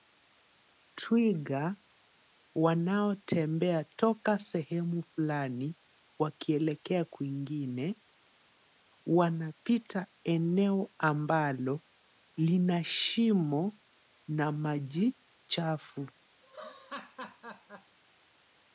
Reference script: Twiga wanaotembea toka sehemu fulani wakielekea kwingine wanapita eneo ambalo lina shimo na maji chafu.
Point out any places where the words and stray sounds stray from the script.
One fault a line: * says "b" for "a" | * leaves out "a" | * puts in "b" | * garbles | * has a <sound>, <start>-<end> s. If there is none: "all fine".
* has a laugh, 16.4-18.0 s